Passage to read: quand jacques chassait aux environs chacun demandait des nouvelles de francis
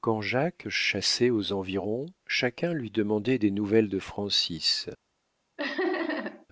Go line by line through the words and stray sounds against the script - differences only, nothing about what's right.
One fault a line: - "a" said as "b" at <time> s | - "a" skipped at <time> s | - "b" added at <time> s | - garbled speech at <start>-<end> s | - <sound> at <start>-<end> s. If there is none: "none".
- "lui" added at 2.7 s
- laugh at 5.6-6.5 s